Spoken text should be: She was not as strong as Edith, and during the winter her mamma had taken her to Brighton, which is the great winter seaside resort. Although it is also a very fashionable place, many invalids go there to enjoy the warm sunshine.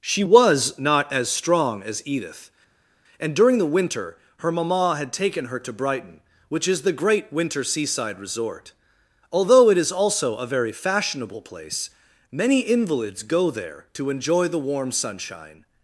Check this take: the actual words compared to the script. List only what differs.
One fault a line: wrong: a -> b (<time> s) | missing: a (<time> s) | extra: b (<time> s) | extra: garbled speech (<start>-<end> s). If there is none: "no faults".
no faults